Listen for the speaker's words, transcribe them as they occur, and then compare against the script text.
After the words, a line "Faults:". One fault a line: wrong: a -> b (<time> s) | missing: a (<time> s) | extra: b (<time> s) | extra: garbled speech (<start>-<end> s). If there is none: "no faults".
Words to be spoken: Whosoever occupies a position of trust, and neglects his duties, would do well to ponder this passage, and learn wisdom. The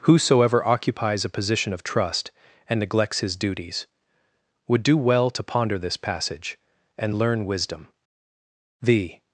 Whosoever occupies a position of trust, and neglects his duties, would do well to ponder this passage, and learn wisdom. The
Faults:
no faults